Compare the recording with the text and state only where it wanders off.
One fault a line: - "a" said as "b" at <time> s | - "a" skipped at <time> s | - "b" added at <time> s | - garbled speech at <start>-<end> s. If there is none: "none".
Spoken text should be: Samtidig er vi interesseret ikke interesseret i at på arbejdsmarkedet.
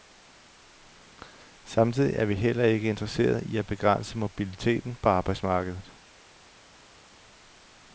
- "interesseret" said as "heller" at 2.4 s
- "begrænse mobiliteten" added at 3.7 s